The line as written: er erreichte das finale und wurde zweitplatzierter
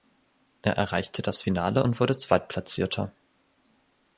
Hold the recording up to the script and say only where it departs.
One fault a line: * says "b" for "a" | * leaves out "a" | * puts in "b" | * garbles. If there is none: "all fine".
all fine